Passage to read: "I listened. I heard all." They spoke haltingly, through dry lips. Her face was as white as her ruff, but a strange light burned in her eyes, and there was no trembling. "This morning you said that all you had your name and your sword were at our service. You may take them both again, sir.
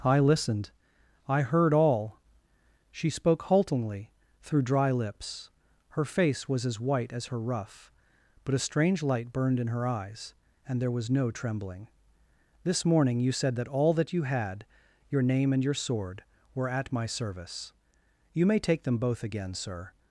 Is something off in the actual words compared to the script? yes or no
yes